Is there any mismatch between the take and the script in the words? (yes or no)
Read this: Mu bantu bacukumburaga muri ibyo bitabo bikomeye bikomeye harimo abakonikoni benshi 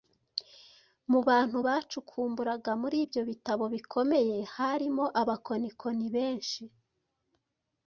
yes